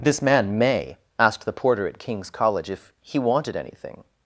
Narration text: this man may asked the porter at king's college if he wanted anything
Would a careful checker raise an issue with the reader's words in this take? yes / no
no